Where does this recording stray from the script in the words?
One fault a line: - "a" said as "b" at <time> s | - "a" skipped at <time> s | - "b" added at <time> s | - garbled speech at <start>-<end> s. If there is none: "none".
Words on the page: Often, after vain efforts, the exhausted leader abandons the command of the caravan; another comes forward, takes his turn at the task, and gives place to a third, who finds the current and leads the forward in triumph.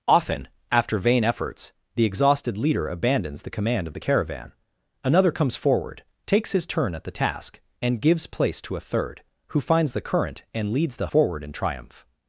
none